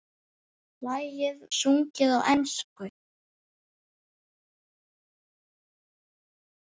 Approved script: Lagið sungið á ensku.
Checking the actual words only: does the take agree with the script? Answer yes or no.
yes